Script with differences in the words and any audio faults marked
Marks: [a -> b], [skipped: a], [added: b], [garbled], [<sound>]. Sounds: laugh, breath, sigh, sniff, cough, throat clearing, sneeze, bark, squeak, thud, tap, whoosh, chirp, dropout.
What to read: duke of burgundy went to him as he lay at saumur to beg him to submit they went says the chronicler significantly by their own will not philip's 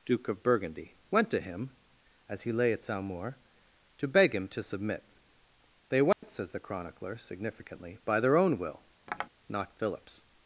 duke of burgundy went to him as he lay at saumur to beg him to submit they went [dropout] says the chronicler significantly by their own will [tap] not philip's